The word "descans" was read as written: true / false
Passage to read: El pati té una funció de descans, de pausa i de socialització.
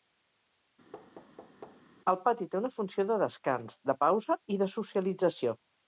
true